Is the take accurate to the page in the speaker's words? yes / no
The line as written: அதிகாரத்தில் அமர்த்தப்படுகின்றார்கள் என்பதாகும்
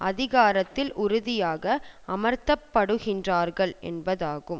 no